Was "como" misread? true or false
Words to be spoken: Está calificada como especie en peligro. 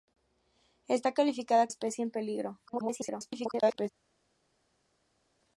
true